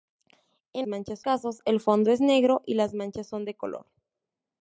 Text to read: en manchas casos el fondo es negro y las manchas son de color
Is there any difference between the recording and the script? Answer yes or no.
no